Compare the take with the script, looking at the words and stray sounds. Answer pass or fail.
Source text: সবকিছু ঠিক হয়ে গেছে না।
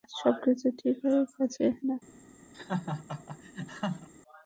fail